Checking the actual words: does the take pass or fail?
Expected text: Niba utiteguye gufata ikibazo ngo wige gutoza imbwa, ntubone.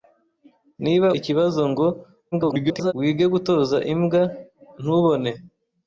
fail